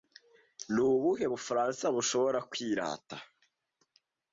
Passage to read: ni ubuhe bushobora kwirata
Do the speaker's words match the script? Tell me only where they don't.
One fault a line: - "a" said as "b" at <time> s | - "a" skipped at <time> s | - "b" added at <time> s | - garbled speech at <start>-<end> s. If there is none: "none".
- "bufaransa" added at 1.3 s